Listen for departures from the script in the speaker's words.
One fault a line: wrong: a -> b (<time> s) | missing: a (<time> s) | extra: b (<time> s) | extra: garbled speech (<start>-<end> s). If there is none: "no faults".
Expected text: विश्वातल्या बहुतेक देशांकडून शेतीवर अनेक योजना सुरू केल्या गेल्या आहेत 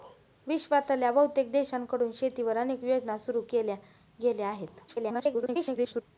extra: garbled speech (4.9-6.0 s)